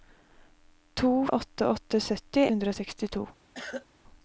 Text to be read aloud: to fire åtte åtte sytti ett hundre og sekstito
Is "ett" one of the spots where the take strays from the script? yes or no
yes